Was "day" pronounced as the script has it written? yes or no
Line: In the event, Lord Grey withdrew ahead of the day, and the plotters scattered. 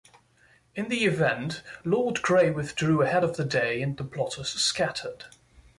yes